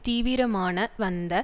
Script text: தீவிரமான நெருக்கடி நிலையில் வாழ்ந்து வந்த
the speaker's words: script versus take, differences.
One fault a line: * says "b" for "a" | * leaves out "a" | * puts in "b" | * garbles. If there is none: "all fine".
* leaves out "நெருக்கடி நிலையில் வாழ்ந்து"